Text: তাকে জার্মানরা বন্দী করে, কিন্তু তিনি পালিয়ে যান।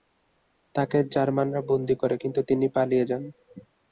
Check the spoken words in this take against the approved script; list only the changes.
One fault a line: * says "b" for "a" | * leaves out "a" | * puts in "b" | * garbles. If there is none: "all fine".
all fine